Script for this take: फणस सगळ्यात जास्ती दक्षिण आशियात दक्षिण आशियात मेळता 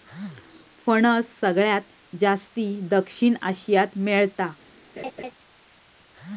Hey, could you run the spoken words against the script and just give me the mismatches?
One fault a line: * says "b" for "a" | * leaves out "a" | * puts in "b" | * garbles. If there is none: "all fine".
* leaves out "दक्षिण आशियात"